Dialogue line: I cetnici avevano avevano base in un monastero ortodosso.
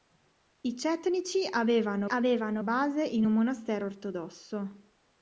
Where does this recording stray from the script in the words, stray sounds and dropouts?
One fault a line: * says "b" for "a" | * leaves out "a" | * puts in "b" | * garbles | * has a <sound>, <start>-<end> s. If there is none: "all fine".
all fine